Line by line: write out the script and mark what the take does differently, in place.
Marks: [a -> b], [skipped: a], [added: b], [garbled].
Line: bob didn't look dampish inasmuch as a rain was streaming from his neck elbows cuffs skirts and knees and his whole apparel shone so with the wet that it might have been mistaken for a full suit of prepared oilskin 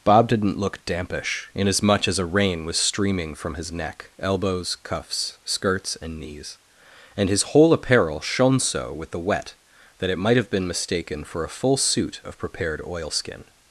bob didn't look dampish inasmuch as a rain was streaming from his neck elbows cuffs skirts and knees and his whole apparel shone so with the wet that it might have been mistaken for a full suit of prepared oilskin